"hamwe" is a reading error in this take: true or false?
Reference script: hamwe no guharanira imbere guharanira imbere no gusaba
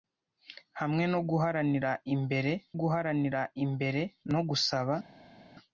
false